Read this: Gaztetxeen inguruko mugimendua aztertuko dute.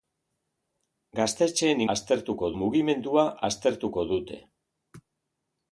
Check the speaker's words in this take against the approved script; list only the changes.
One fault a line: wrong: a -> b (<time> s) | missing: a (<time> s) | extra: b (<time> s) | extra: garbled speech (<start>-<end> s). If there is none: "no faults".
wrong: inguruko -> aztertuko (1.9 s)